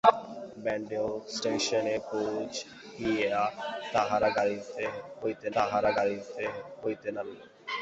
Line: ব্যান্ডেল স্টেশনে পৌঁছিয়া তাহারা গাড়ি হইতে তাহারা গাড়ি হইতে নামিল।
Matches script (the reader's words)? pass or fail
pass